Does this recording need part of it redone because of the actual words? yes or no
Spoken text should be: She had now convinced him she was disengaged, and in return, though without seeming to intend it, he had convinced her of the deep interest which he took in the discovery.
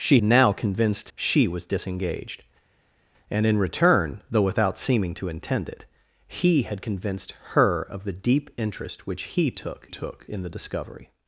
yes